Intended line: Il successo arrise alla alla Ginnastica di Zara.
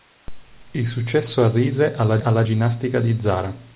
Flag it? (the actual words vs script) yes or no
no